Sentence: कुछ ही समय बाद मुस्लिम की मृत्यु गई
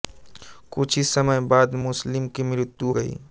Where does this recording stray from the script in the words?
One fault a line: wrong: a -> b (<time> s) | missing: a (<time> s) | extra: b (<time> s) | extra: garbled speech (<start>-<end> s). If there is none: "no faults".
no faults